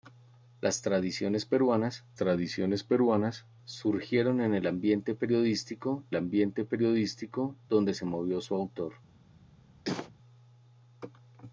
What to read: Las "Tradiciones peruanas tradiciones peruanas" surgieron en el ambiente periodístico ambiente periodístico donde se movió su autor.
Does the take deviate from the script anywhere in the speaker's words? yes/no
no